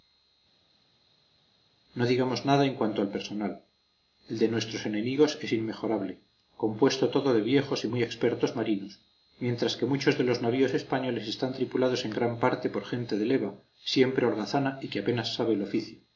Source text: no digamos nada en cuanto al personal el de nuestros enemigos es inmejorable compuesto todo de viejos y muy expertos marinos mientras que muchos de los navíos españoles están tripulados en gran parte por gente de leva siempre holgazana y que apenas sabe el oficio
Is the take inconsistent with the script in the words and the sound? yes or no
no